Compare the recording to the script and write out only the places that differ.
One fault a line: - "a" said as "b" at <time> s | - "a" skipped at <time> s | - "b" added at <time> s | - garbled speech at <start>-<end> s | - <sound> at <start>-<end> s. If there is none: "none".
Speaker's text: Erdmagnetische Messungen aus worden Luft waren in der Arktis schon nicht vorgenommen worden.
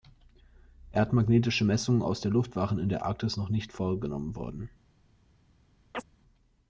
- "worden" said as "der" at 2.2 s
- "schon" said as "noch" at 3.3 s
- chirp at 5.9-6.0 s